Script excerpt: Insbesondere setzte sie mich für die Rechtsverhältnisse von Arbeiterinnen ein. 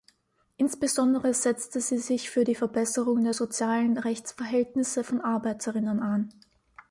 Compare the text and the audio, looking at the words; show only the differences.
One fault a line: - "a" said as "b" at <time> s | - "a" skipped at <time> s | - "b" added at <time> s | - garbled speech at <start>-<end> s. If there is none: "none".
- "mich" said as "sich" at 2.0 s
- "Verbesserung der sozialen" added at 2.5 s